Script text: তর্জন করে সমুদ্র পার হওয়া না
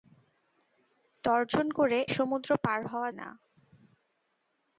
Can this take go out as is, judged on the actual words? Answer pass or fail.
pass